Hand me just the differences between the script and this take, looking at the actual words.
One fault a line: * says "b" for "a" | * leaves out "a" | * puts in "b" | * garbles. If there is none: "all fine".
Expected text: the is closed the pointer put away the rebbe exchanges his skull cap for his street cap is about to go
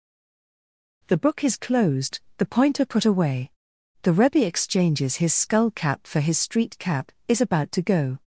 * puts in "book"